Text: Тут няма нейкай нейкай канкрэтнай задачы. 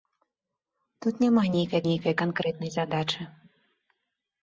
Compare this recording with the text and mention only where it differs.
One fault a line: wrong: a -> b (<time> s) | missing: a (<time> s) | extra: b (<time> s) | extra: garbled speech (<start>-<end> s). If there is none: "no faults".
no faults